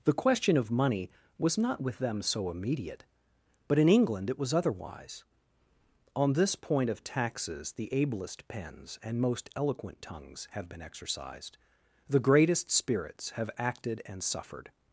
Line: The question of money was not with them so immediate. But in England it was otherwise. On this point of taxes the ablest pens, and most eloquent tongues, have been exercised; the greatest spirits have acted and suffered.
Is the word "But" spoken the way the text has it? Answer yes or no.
yes